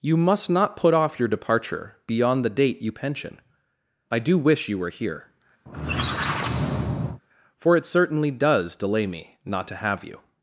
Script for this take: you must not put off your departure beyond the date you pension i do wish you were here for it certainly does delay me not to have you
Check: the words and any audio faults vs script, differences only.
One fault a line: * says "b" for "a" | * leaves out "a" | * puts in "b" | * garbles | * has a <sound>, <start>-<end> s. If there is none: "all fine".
* has a squeak, 5.7-7.2 s